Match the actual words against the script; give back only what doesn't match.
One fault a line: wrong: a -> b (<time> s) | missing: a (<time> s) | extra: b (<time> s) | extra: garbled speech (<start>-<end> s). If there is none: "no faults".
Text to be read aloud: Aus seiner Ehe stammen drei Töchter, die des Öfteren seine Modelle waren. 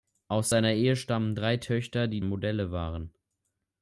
missing: des Öfteren seine (2.2 s)